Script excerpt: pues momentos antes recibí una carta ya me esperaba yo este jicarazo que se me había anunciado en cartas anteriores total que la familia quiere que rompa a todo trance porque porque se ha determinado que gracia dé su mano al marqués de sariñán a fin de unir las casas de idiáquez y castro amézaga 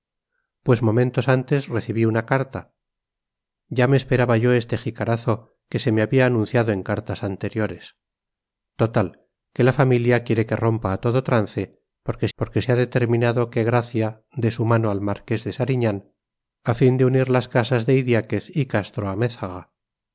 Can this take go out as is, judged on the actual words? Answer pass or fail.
pass